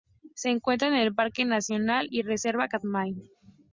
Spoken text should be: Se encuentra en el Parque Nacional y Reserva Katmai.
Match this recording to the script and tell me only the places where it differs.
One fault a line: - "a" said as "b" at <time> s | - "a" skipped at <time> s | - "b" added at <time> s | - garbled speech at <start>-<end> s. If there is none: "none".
none